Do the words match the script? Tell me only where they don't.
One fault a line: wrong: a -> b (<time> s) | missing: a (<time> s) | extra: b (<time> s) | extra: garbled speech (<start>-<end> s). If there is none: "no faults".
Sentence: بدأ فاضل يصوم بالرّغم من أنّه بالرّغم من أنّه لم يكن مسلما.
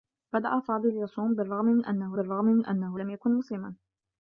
no faults